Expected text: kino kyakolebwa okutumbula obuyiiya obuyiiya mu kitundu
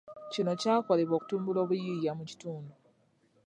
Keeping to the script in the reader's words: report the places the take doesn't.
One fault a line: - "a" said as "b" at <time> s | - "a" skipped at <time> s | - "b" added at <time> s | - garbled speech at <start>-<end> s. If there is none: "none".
- "obuyiiya" skipped at 2.1 s